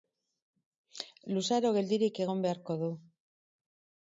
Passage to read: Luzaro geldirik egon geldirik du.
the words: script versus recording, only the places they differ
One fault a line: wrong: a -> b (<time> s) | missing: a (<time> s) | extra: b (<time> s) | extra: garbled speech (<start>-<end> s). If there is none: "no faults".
wrong: geldirik -> beharko (2.5 s)